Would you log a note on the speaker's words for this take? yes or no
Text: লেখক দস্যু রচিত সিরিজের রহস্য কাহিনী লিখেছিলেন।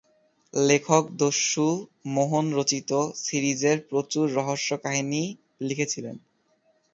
yes